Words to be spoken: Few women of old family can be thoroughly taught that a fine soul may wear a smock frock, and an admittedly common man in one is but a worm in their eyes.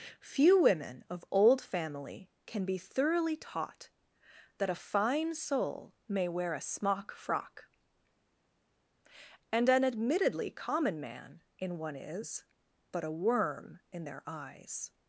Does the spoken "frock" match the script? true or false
true